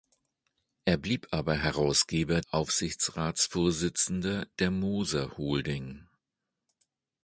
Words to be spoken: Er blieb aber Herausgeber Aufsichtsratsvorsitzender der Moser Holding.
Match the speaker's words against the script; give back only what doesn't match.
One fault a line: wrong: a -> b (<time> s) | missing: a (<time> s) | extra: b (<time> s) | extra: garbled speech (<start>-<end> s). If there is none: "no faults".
no faults